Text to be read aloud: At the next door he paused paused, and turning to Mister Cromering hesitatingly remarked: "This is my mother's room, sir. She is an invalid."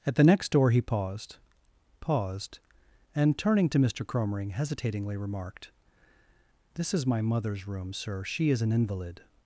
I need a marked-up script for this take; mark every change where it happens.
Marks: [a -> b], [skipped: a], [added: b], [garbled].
At the next door he paused paused, and turning to Mister Cromering hesitatingly remarked: "This is my mother's room, sir. She is an invalid."